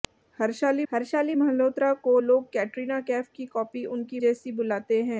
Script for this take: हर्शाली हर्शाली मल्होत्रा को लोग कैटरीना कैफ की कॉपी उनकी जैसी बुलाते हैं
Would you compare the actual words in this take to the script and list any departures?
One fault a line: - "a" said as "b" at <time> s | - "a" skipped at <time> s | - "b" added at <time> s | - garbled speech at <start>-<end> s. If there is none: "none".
none